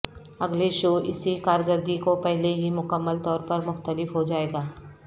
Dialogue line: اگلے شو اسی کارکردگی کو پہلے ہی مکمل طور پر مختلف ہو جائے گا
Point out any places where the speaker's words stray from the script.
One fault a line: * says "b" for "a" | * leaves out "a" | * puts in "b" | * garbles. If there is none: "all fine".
all fine